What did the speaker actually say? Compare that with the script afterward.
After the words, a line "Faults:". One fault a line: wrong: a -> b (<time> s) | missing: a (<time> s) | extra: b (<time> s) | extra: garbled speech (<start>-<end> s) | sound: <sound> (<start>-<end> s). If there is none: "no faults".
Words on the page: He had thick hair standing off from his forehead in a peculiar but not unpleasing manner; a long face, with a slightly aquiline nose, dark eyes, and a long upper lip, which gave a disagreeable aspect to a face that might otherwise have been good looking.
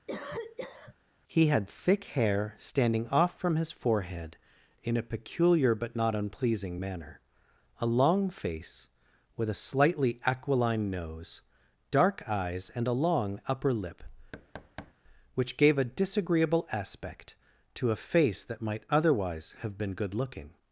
He had thick hair standing off from his forehead in a peculiar but not unpleasing manner; a long face, with a slightly aquiline nose, dark eyes, and a long upper lip, which gave a disagreeable aspect to a face that might otherwise have been good looking.
Faults:
sound: cough (0.1-0.9 s)
sound: thud (14.3-14.9 s)